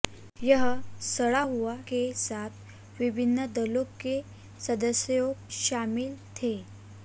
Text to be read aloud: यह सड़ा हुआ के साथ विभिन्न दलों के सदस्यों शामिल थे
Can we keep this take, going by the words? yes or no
yes